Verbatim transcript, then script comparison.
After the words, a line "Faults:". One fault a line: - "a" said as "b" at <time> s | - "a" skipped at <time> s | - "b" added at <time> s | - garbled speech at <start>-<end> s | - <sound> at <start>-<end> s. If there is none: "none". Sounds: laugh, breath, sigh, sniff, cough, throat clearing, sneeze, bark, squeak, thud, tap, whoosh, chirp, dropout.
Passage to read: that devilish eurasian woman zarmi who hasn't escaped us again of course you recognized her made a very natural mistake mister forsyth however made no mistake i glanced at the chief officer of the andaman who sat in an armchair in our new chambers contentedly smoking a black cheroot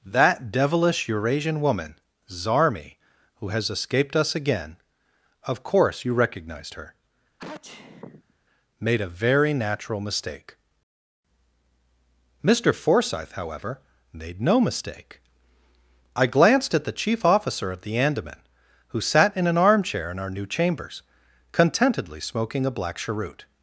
that devilish eurasian woman zarmi who has escaped us again of course you recognized her made a very natural mistake mister forsyth however made no mistake i glanced at the chief officer of the andaman who sat in an armchair in our new chambers contentedly smoking a black cheroot
Faults:
- "hasn't" said as "has" at 3.5 s
- sneeze at 7.4-8.3 s